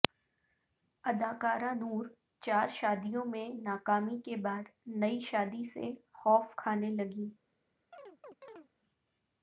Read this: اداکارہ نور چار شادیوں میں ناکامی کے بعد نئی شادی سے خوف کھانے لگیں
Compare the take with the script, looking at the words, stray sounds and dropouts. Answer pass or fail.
fail